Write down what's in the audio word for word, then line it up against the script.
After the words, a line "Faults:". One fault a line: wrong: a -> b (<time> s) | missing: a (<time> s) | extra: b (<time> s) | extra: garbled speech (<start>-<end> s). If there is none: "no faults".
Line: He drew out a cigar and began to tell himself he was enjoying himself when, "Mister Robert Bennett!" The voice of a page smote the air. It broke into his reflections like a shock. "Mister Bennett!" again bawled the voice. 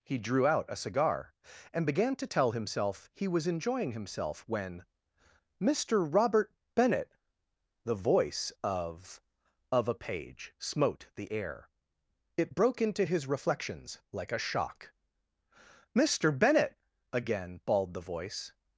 He drew out a cigar and began to tell himself he was enjoying himself when, "Mister Robert Bennett!" The voice of of a page smote the air. It broke into his reflections like a shock. "Mister Bennett!" again bawled the voice.
Faults:
extra: of (9.7 s)